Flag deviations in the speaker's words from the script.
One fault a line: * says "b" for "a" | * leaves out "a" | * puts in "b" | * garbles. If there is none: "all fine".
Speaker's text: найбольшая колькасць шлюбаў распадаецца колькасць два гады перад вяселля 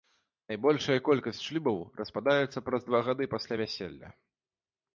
* says "праз" for "колькасць"
* says "пасля" for "перад"